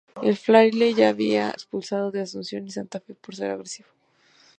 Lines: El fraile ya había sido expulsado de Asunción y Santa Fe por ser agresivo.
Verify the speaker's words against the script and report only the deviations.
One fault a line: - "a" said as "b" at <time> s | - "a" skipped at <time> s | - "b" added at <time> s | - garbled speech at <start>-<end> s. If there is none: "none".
- "sido" skipped at 1.5 s